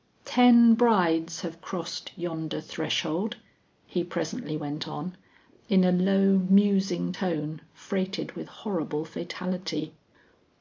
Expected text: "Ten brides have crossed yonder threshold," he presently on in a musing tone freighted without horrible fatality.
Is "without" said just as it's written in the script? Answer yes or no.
no